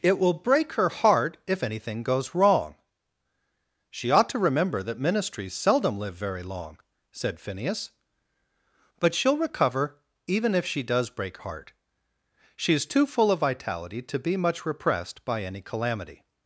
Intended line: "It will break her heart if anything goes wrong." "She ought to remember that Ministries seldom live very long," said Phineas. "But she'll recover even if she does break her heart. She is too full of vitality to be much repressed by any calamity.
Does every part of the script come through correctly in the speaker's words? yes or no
no